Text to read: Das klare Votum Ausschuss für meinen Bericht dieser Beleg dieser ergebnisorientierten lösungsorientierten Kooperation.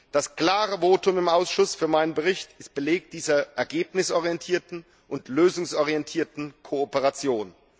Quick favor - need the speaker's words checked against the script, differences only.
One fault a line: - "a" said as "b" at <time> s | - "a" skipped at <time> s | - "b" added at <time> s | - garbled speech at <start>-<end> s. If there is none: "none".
- "im" added at 1.2 s
- "dieser" said as "ist" at 2.6 s
- "und" added at 5.1 s